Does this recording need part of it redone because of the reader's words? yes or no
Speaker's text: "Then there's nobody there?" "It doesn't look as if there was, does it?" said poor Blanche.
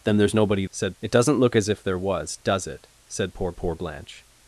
yes